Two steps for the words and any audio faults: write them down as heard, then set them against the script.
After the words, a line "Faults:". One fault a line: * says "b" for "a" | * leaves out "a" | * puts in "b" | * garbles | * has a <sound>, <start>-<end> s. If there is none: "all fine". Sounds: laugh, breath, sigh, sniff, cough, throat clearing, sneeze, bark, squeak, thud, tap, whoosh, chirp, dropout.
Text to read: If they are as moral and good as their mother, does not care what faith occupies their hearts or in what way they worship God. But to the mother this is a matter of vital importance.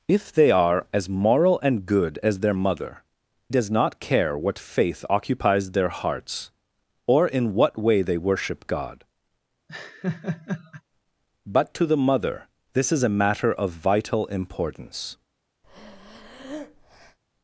If they are as moral and good as their mother, does not care what faith occupies their hearts or in what way they worship God. But to the mother this is a matter of vital importance.
Faults:
* has a laugh, 9.7-10.8 s
* has a breath, 15.6-17.2 s